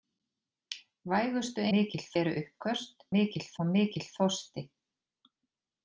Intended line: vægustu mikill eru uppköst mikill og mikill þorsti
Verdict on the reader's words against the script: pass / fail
pass